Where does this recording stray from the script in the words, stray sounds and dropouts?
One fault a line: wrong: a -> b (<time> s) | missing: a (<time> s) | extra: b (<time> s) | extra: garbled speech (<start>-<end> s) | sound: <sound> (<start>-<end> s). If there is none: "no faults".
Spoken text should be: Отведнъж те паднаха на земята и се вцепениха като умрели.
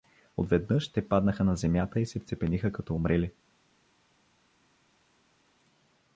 no faults